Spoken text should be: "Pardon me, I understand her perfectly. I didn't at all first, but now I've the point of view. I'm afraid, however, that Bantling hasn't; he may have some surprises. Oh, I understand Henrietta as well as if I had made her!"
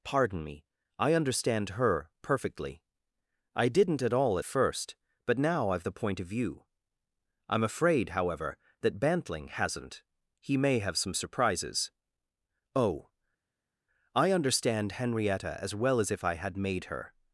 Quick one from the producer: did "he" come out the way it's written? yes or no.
yes